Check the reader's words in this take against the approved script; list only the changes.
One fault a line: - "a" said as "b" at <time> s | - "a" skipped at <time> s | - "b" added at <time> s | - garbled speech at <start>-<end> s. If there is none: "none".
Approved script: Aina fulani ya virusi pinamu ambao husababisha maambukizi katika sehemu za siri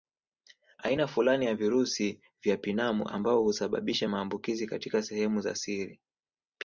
- "vya" added at 2.4 s